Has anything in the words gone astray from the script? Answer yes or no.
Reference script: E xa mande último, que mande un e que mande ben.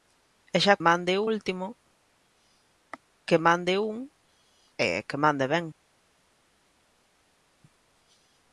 no